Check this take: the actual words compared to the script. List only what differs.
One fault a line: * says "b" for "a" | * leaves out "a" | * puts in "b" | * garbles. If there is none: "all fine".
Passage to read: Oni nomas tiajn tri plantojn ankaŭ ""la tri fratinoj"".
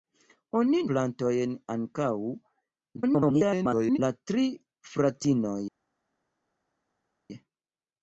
* leaves out "nomas tiajn tri"
* garbles